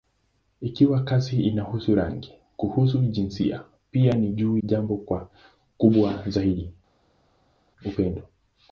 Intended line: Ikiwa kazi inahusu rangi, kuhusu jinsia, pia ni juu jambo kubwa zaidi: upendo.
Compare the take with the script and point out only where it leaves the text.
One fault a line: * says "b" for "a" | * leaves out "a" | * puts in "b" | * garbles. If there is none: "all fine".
all fine